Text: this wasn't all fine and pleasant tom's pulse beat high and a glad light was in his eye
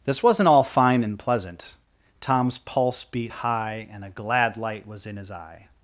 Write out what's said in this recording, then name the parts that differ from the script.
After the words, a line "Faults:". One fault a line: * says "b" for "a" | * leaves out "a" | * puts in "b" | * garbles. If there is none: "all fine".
this wasn't all fine and pleasant tom's pulse beat high and a glad light was in his eye
Faults:
all fine